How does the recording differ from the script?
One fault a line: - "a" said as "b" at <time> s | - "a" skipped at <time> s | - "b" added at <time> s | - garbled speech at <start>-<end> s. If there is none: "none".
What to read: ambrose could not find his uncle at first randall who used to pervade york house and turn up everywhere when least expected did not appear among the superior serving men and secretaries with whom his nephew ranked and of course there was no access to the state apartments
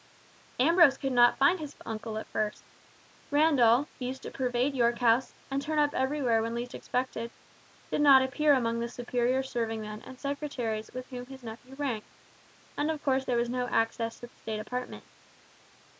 none